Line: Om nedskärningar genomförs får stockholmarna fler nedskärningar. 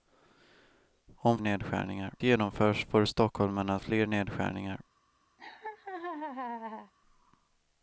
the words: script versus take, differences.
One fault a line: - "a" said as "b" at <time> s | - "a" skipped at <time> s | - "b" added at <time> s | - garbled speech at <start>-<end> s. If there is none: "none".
none